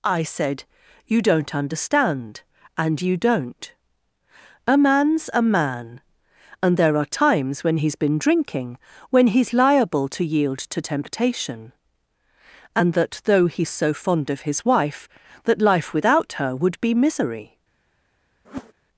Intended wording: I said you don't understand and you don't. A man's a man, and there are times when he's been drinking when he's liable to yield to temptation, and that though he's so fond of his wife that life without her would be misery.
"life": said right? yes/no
yes